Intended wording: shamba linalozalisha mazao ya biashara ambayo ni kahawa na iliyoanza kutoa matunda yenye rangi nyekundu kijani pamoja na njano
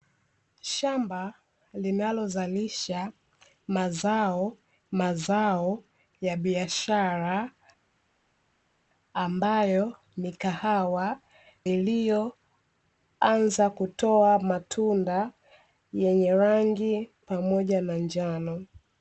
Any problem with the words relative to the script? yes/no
yes